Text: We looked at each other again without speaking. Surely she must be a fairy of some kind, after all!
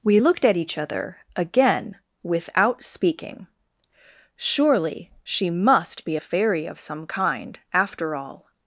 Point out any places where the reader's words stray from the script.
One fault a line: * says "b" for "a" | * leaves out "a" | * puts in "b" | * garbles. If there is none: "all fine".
all fine